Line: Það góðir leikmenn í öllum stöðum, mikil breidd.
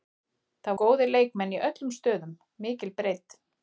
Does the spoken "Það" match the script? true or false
true